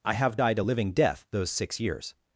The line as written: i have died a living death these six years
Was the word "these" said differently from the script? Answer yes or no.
yes